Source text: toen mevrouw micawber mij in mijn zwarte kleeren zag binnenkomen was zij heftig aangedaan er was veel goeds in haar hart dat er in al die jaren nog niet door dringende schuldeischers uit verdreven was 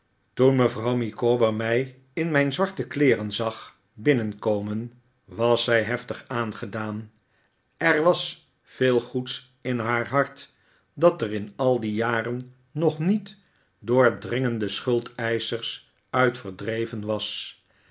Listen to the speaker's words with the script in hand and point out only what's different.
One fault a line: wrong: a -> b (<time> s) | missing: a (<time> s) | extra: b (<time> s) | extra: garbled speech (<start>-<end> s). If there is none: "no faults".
no faults